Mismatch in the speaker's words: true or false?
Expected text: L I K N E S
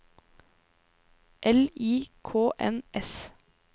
true